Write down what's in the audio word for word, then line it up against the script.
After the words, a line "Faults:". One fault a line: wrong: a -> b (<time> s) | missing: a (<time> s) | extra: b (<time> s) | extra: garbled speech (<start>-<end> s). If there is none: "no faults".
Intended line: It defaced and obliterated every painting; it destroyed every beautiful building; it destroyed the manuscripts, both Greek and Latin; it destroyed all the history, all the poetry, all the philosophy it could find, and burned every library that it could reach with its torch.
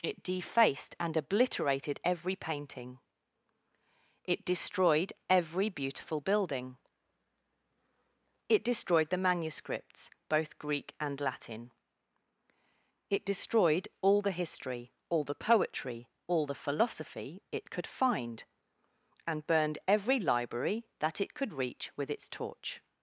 It defaced and obliterated every painting; it destroyed every beautiful building; it destroyed the manuscripts, both Greek and Latin; it destroyed all the history, all the poetry, all the philosophy it could find, and burned every library that it could reach with its torch.
Faults:
no faults